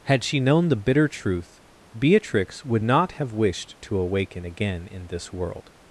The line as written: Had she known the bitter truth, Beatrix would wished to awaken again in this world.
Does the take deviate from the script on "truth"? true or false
false